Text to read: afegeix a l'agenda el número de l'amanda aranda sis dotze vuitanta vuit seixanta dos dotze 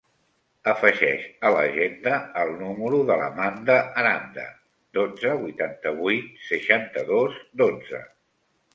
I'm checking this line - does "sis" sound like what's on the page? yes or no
no